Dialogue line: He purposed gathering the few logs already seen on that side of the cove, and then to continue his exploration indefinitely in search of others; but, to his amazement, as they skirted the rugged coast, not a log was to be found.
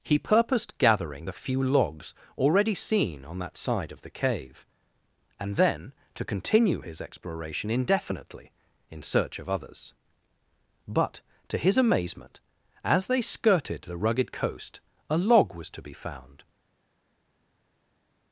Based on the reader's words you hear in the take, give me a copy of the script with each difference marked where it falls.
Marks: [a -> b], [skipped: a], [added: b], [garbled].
He purposed gathering the few logs already seen on that side of the [cove, -> cave] and then to continue his exploration indefinitely in search of others; but, to his amazement, as they skirted the rugged coast, [skipped: not] a log was to be found.